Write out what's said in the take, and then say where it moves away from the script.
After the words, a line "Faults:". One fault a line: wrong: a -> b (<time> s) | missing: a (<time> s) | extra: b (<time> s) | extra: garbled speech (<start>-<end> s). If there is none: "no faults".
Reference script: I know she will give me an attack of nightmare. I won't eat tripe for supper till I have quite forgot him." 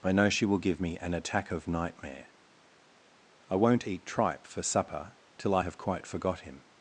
I know she will give me an attack of nightmare. I won't eat tripe for supper till I have quite forgot him."
Faults:
no faults